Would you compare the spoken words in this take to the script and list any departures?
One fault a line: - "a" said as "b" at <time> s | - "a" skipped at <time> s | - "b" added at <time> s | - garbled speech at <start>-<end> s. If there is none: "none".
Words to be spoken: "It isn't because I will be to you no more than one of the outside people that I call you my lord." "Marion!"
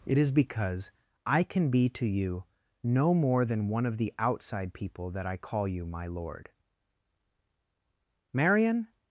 - "isn't" said as "is" at 0.2 s
- "will" said as "can" at 1.4 s